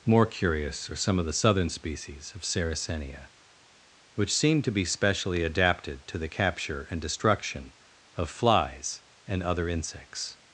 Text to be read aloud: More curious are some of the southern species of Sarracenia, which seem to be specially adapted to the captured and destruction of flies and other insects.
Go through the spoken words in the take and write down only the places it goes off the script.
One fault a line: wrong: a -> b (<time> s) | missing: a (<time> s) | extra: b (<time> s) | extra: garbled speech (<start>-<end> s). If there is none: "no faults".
wrong: captured -> capture (6.3 s)